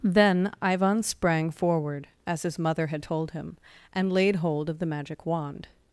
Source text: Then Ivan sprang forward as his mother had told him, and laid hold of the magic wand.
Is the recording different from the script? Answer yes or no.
no